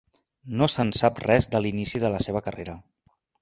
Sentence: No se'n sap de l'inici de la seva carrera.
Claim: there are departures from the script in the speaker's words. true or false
true